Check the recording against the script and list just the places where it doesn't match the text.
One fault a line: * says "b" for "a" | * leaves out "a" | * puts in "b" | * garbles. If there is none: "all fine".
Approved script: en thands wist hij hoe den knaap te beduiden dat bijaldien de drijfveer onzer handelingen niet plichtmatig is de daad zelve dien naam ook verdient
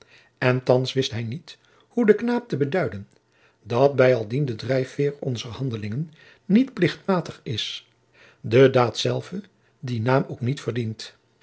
* puts in "niet"
* puts in "niet"